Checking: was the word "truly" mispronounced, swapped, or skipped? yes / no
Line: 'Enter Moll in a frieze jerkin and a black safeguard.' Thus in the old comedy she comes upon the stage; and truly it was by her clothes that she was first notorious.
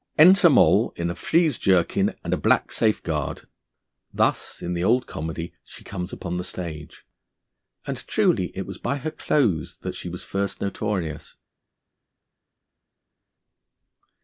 no